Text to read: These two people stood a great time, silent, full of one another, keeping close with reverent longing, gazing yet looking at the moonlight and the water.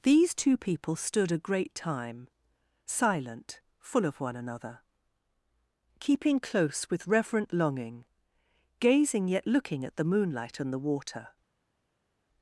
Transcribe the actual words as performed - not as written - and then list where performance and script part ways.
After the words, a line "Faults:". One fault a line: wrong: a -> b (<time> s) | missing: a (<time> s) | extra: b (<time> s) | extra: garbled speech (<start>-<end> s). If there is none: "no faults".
These two people stood a great time, silent, full of one another, keeping close with reverent longing, gazing yet looking at the moonlight and the water.
Faults:
no faults